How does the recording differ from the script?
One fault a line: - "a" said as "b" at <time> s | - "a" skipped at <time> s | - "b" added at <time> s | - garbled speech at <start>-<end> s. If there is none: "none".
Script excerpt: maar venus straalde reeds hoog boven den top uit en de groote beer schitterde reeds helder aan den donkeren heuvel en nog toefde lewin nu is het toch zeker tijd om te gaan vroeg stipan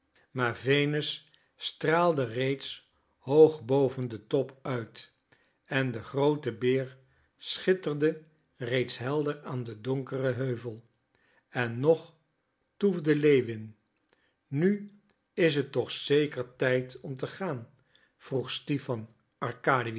none